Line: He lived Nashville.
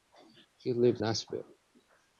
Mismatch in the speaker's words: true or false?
false